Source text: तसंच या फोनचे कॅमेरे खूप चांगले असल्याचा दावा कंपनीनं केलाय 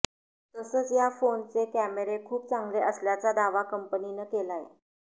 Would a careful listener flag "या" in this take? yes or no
no